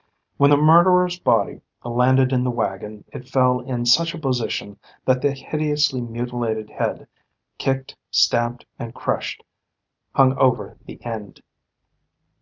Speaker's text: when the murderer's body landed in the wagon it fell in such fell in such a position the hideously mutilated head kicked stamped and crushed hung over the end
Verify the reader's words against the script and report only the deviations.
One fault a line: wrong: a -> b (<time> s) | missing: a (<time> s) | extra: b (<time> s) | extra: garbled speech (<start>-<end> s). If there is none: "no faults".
missing: fell in such (4.1 s)
extra: that (5.0 s)